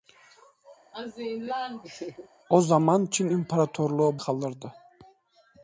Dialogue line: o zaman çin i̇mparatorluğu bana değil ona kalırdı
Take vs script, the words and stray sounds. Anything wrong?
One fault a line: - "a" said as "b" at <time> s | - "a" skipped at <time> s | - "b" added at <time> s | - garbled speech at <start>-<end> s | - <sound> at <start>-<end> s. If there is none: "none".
- laugh at 0.9-2.3 s
- "bana değil ona" skipped at 4.2 s